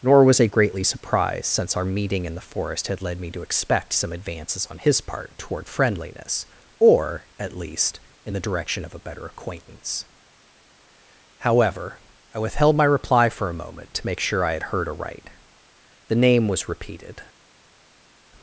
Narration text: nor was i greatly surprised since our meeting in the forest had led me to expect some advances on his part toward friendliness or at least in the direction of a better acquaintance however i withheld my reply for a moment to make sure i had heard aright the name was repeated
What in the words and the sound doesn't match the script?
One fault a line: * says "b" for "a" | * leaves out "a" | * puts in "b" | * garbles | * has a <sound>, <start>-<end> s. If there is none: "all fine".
all fine